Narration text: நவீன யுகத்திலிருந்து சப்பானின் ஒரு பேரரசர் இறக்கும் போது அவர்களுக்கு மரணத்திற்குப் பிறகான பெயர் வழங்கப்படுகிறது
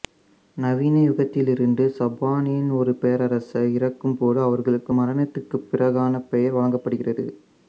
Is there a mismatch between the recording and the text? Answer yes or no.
no